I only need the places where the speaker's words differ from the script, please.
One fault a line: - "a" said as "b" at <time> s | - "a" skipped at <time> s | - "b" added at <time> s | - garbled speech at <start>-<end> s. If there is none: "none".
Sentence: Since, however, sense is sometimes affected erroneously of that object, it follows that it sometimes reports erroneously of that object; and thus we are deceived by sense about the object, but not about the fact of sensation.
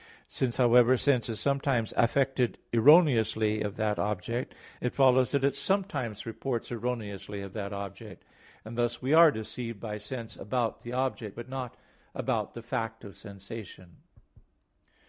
none